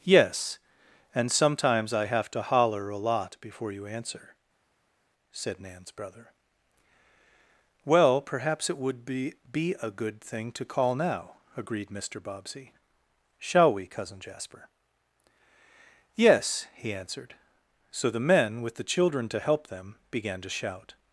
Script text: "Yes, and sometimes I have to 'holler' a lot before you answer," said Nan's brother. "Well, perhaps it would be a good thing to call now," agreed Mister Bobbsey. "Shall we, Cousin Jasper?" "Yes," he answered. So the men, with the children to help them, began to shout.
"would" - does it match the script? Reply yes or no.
yes